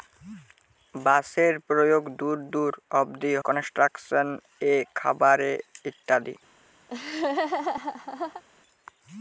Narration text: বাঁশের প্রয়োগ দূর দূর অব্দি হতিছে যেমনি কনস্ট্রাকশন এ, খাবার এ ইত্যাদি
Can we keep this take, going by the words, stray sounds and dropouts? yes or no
no